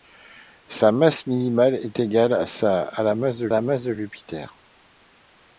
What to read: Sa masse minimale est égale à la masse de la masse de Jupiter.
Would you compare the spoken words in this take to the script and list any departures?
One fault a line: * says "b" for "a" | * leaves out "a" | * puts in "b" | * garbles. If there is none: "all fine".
all fine